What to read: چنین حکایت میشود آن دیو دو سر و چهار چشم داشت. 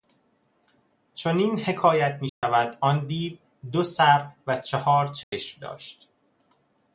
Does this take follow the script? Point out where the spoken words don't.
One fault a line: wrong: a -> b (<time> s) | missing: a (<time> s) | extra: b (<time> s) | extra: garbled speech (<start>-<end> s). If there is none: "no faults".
no faults